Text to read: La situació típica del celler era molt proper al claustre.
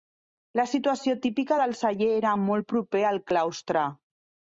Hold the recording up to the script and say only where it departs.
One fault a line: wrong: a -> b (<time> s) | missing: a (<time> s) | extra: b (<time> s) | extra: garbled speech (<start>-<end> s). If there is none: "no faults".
no faults